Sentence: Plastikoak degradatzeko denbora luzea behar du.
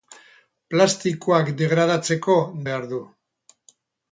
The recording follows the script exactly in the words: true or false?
false